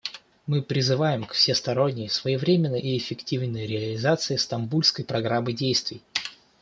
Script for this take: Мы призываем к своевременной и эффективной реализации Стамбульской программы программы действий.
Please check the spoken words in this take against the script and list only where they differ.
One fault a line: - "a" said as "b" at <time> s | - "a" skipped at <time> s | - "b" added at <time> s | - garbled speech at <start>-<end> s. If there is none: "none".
- "всесторонней" added at 1.3 s
- "программы" skipped at 5.5 s